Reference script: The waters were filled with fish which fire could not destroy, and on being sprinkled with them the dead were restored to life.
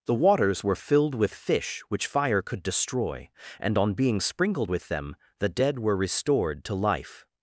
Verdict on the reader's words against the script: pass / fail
fail